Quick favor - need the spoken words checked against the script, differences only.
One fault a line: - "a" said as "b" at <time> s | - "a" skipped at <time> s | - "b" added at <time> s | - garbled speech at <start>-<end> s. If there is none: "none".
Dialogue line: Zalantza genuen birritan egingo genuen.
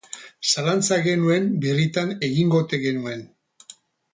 - "ote" added at 2.7 s